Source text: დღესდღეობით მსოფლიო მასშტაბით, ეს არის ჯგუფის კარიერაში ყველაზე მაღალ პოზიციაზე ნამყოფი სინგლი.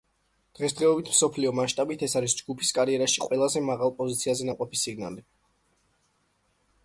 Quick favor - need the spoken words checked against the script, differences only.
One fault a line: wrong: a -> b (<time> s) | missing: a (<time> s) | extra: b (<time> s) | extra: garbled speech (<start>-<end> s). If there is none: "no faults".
no faults